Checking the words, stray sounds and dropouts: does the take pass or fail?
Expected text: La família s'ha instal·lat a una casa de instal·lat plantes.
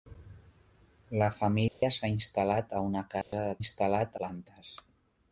fail